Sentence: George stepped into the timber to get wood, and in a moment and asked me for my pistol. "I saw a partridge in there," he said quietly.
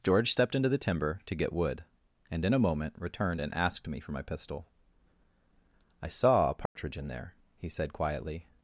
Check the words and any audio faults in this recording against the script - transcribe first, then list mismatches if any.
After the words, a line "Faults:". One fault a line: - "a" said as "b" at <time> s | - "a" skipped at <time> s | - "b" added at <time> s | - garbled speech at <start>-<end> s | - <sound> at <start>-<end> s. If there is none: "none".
George stepped into the timber to get wood, and in a moment returned and asked me for my pistol. "I saw a partridge in there," he said quietly.
Faults:
- "returned" added at 3.0 s
- dropout at 6.7-6.8 s